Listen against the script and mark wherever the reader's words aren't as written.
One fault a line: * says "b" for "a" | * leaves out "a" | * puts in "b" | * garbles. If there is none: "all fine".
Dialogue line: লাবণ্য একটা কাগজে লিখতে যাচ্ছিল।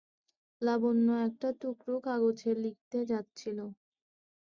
* puts in "টুকরো"